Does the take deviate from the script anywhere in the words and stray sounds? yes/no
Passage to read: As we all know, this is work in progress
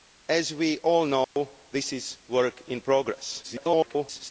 yes